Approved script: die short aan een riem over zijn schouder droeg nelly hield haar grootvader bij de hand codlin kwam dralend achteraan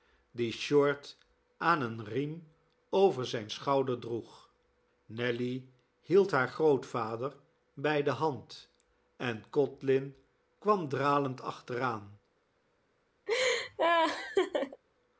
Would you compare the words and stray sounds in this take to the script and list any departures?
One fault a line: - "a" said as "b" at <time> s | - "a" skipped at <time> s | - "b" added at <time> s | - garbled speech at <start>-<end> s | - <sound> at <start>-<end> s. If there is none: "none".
- "en" added at 9.2 s
- laugh at 13.3-14.8 s